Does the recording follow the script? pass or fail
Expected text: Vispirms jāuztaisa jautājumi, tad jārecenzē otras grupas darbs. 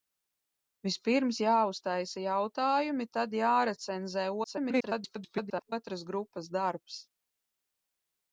fail